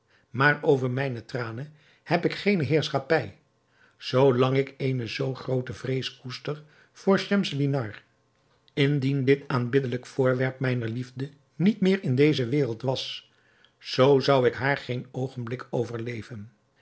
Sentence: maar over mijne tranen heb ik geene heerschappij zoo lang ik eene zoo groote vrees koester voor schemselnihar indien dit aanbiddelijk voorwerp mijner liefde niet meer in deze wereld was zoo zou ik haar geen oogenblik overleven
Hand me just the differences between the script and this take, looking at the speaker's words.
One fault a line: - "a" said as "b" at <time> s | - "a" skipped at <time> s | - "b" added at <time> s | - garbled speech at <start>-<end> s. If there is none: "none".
none